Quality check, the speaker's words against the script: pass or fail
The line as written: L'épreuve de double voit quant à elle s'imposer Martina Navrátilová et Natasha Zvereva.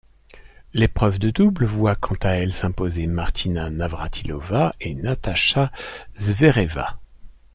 pass